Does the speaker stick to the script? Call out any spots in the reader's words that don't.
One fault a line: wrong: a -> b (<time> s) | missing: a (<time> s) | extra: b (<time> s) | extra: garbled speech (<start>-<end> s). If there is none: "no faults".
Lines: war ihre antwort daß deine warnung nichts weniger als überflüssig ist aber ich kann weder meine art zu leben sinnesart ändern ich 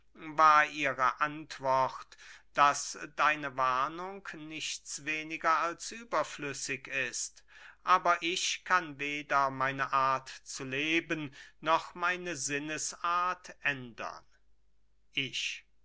extra: noch meine (11.6 s)